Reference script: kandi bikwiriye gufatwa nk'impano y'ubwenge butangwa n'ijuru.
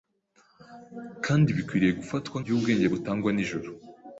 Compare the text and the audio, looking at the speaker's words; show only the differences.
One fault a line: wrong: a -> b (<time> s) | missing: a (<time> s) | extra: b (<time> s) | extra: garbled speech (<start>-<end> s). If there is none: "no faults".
missing: nk'impano (2.4 s)